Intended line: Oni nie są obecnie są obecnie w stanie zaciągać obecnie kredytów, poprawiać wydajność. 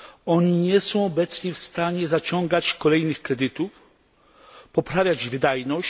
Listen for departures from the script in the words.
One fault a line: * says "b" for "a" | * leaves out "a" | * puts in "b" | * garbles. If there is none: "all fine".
* leaves out "są obecnie"
* says "kolejnych" for "obecnie"